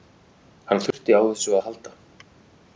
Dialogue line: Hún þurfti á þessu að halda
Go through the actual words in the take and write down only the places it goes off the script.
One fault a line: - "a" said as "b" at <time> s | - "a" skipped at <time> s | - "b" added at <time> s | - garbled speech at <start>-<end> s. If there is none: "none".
- "Hún" said as "Hann" at 0.7 s